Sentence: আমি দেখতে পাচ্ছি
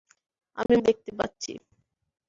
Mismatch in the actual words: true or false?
false